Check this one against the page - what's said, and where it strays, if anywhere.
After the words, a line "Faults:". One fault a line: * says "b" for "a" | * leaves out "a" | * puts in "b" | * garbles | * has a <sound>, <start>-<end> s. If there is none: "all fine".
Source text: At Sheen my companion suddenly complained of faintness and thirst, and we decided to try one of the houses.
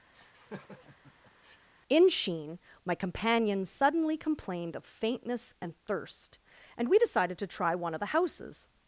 In Sheen my companion suddenly complained of faintness and thirst, and we decided to try one of the houses.
Faults:
* has a laugh, 0.1-1.7 s
* says "In" for "At"